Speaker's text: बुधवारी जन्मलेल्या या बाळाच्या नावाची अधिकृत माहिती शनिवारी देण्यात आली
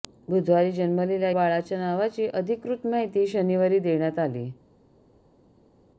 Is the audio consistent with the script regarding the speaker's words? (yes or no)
no